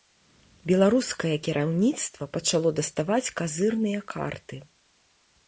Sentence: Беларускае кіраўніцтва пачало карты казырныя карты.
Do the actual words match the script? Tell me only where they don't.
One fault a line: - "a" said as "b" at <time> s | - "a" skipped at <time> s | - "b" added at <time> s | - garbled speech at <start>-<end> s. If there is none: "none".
- "карты" said as "даставаць" at 2.8 s